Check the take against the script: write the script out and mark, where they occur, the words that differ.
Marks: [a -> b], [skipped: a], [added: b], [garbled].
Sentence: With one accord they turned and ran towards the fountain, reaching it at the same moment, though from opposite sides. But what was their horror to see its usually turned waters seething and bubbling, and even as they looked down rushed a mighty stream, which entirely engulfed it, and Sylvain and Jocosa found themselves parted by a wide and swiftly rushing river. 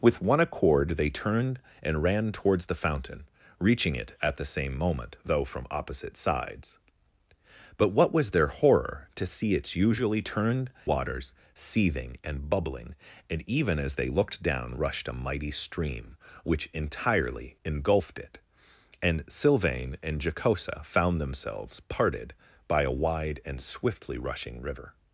With one accord they turned and ran towards the fountain, reaching it at the same moment, though from opposite sides. But what was their horror to see its usually turned waters seething and bubbling, and even as they looked down rushed a mighty stream, which entirely engulfed it, and Sylvain and Jocosa found themselves parted by a wide and swiftly rushing river.